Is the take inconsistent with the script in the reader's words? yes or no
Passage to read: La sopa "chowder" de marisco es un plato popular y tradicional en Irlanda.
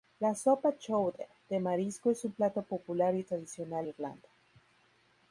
yes